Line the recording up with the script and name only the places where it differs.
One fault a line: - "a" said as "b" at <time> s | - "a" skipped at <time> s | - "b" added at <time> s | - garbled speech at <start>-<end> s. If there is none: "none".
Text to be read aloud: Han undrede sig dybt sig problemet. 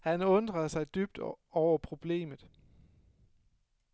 - "sig" said as "over" at 1.5 s